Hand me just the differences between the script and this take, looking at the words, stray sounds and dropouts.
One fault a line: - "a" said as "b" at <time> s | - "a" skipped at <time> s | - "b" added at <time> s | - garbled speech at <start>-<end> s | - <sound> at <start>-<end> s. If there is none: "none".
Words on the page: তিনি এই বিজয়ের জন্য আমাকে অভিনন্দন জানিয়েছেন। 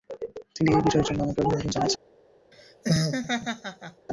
- laugh at 2.5-4.1 s